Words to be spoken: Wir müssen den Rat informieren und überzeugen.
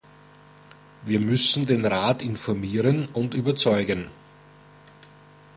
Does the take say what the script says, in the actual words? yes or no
yes